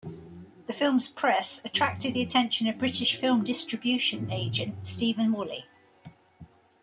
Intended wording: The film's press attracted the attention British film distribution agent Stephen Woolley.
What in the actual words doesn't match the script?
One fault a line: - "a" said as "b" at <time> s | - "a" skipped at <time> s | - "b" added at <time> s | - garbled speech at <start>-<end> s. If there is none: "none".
- "of" added at 2.7 s